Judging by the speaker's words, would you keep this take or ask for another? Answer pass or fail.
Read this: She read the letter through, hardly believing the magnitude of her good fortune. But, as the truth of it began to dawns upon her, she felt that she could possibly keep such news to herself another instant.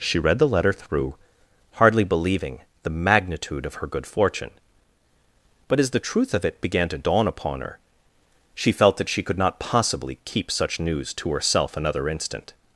fail